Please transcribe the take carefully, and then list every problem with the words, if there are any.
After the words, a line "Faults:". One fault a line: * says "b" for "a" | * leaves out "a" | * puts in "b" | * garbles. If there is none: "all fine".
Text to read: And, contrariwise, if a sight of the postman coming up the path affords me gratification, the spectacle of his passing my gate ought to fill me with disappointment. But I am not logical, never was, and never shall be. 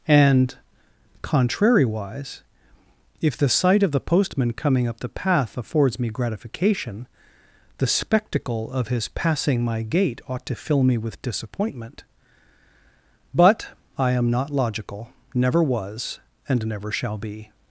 And, contrariwise, if the sight of the postman coming up the path affords me gratification, the spectacle of his passing my gate ought to fill me with disappointment. But I am not logical, never was, and never shall be.
Faults:
* says "the" for "a"